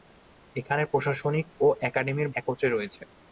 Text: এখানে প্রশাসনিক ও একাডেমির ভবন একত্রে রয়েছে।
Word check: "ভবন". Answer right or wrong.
wrong